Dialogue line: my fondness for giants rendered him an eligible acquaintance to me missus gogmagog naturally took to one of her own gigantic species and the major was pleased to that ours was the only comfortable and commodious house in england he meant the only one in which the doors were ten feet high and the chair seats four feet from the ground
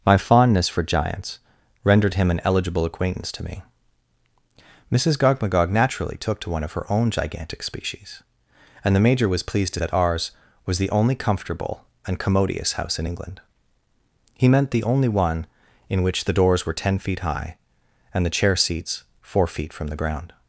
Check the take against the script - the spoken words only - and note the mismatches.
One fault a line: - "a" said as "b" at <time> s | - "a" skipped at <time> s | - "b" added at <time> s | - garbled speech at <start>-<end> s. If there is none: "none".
none